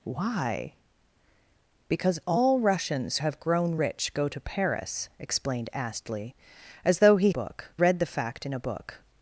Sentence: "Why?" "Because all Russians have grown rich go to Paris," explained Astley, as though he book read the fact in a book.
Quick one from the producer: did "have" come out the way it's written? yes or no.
yes